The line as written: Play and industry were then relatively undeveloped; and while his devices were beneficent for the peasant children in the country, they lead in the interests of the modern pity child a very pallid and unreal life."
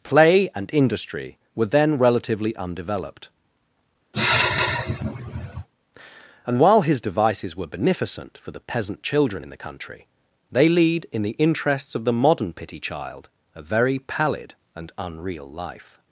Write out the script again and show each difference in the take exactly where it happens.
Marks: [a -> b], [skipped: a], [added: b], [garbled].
Play and industry were then relatively undeveloped; and while his devices were beneficent for the peasant children in the country, they lead in the interests of the modern pity child a very pallid and unreal life."